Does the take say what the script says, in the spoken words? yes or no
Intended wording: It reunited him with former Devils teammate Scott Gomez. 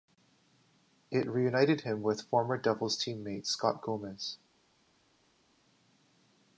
yes